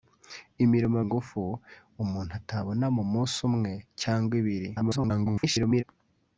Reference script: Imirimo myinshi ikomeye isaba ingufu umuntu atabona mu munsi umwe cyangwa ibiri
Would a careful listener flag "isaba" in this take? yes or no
yes